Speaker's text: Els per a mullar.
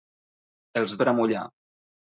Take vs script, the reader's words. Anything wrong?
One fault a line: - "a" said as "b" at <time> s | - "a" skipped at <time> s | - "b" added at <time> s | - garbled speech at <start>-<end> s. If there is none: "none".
none